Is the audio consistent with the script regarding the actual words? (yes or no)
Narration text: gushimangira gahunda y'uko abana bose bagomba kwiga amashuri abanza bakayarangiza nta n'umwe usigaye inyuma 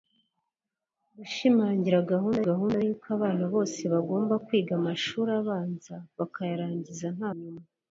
no